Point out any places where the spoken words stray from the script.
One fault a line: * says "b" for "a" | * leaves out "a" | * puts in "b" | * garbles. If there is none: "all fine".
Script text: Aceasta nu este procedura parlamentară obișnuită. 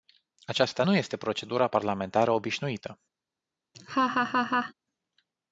all fine